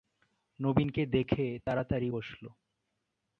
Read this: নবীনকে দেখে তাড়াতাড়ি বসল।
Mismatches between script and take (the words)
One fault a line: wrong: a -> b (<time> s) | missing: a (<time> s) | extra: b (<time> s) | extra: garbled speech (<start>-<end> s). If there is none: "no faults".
no faults